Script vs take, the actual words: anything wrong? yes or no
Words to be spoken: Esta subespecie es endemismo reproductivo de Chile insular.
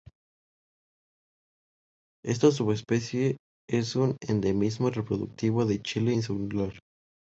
yes